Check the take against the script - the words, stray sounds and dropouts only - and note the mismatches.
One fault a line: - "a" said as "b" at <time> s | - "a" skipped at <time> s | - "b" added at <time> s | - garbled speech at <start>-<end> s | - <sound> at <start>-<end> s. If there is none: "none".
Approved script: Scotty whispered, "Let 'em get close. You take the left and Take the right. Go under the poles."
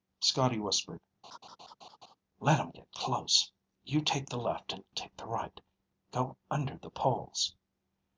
- laugh at 1.2-2.2 s